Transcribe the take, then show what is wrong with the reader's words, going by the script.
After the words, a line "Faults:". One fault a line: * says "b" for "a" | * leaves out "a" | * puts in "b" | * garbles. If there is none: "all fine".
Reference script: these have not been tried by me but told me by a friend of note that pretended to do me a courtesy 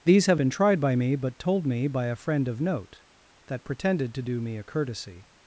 these have been tried by me but told me by a friend of note that pretended to do me a courtesy
Faults:
* leaves out "not"